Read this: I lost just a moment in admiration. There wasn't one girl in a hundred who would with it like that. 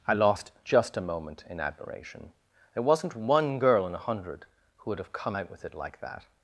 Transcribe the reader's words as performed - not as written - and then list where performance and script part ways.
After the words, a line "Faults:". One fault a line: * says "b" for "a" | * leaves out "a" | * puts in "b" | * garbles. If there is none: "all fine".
I lost just a moment in admiration. There wasn't one girl in a hundred who would have come out with it like that.
Faults:
* puts in "have come out"